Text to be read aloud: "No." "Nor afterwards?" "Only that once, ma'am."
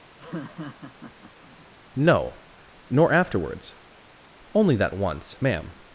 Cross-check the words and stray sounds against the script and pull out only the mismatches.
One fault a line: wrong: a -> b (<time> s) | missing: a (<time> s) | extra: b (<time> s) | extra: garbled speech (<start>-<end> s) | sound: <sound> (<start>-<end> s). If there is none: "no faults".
sound: laugh (0.2-1.7 s)